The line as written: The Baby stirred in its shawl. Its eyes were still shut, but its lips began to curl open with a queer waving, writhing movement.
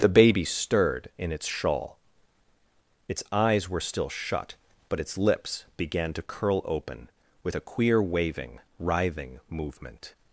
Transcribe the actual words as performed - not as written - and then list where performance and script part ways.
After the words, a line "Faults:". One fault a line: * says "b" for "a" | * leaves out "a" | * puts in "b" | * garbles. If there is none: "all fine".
The Baby stirred in its shawl. Its eyes were still shut, but its lips began to curl open with a queer waving, writhing movement.
Faults:
all fine